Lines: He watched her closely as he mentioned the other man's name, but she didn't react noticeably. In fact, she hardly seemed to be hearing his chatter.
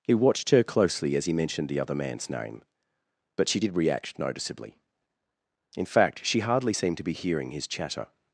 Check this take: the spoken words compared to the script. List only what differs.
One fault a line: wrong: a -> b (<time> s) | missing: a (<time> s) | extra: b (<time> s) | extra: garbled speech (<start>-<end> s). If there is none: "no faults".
wrong: didn't -> did (3.6 s)